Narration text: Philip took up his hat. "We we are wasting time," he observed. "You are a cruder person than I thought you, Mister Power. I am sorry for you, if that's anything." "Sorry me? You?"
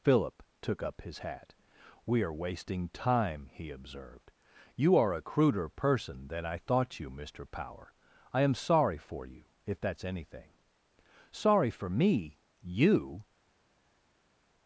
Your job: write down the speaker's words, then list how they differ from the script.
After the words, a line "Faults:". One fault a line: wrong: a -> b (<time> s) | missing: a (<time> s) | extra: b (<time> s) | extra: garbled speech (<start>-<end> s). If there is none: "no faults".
Philip took up his hat. "We are wasting time," he observed. "You are a cruder person than I thought you, Mister Power. I am sorry for you, if that's anything." "Sorry for me? You?"
Faults:
missing: we (2.2 s)
extra: for (11.7 s)